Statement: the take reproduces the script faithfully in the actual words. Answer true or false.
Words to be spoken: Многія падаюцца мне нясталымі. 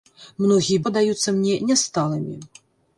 true